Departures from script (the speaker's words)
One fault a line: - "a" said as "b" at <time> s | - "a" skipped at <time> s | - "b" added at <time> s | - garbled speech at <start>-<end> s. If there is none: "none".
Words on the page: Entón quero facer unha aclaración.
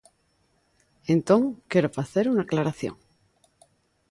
none